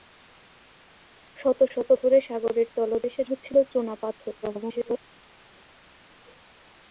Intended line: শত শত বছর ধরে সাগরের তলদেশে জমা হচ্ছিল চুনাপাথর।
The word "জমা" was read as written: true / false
false